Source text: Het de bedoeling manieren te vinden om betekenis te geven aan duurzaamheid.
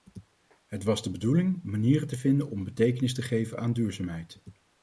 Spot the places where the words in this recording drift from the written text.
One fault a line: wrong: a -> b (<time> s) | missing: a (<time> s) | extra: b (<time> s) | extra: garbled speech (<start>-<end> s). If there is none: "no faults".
extra: was (0.8 s)